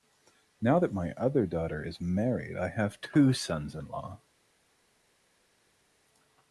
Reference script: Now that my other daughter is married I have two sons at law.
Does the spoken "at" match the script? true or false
false